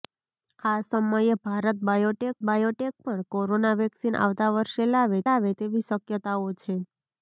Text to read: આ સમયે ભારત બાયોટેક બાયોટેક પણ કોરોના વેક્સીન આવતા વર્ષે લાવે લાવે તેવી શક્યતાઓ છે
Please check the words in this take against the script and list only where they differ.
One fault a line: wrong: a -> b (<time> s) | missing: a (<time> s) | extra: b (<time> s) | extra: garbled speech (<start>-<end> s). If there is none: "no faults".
no faults